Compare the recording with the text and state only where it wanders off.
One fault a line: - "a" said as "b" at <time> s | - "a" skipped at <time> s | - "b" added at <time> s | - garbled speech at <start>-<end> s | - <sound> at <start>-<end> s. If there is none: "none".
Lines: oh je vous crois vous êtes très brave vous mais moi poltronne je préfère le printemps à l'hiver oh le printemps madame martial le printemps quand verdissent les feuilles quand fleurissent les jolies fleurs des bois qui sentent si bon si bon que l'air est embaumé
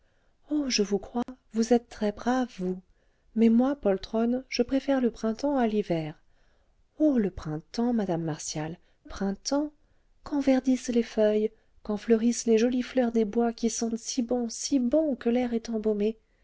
- dropout at 1.2-1.3 s
- "le" skipped at 8.8 s